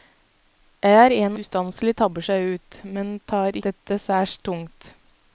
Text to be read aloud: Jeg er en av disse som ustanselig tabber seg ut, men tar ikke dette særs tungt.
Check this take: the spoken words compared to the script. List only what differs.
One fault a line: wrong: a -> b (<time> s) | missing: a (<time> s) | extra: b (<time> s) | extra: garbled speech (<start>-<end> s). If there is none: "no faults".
missing: av disse som (1.4 s)
missing: ikke (3.6 s)